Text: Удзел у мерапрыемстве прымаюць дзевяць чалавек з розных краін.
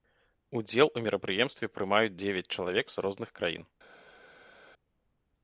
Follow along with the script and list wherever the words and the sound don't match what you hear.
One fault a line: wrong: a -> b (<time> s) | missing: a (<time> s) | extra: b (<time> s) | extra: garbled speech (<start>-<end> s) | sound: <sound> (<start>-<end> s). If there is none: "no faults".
no faults